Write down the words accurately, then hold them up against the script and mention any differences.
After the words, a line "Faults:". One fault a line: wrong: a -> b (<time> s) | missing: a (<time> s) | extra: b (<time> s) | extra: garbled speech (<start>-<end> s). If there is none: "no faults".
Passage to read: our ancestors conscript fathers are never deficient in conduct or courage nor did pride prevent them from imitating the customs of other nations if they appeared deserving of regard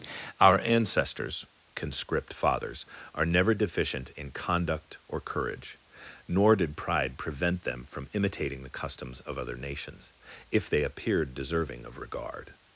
our ancestors conscript fathers are never deficient in conduct or courage nor did pride prevent them from imitating the customs of other nations if they appeared deserving of regard
Faults:
no faults